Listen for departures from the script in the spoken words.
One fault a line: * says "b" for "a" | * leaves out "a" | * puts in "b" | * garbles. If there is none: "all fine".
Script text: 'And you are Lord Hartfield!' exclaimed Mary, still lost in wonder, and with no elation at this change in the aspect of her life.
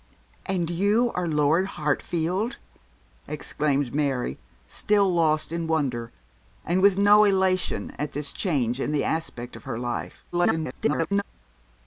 * garbles